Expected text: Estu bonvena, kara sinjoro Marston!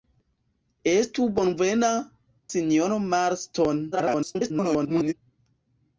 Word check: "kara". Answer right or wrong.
wrong